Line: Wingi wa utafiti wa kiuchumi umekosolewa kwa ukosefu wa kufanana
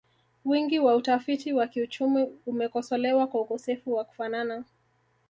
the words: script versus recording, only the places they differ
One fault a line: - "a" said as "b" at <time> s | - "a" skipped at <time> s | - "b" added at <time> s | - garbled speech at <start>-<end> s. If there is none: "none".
none